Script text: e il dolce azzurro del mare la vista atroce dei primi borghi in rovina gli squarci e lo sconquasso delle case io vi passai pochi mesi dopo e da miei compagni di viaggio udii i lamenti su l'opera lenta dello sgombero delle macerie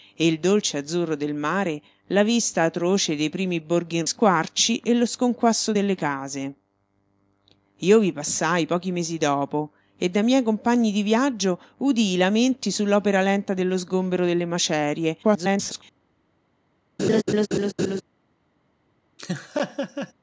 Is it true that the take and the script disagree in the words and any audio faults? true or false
true